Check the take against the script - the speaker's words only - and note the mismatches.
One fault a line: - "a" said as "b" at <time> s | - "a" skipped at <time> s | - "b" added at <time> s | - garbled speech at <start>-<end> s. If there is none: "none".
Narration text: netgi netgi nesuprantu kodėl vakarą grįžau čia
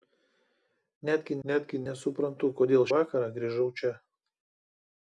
none